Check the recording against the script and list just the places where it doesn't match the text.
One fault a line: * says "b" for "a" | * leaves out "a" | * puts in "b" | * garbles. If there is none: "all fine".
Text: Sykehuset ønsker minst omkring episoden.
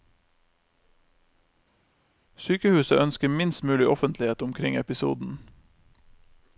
* puts in "mulig offentlighet"